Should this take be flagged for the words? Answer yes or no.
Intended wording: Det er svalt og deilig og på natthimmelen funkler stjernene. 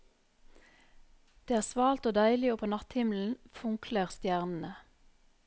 no